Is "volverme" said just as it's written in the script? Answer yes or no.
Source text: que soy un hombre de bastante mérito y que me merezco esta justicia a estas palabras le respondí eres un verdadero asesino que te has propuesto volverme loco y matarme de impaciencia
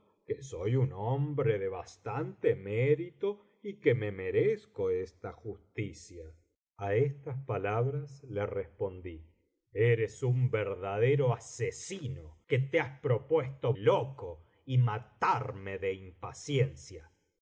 no